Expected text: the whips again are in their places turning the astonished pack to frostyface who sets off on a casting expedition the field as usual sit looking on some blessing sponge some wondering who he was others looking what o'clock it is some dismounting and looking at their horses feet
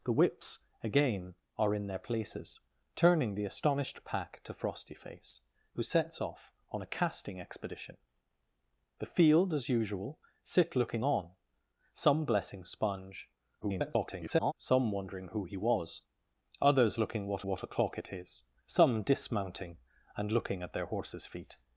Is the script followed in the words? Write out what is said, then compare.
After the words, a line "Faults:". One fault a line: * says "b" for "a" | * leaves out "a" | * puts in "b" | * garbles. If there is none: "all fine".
the whips again are in their places turning the astonished pack to frostyface who sets off on a casting expedition the field as usual sit looking on some blessing sponge [garbled] some wondering who he was others looking what what o'clock it is some dismounting and looking at their horses feet
Faults:
* garbles
* puts in "what"